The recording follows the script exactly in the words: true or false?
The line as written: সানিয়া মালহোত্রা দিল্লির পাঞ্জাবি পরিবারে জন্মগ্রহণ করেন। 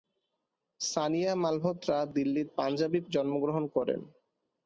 false